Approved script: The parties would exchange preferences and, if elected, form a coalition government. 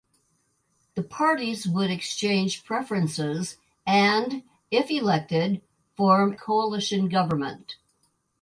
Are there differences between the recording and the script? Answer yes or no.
yes